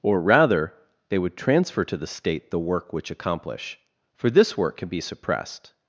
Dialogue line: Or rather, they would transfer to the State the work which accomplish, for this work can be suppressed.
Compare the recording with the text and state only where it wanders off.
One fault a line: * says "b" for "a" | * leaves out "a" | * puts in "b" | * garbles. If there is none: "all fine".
all fine